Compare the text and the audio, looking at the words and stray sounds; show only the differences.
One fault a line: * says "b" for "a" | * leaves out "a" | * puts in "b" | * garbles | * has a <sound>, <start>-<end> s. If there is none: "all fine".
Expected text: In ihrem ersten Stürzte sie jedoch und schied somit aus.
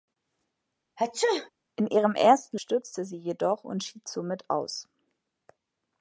* has a sneeze, 1.0-1.5 s